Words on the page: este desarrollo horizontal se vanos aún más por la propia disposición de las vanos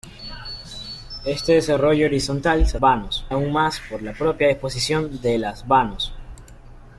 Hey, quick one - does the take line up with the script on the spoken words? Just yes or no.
yes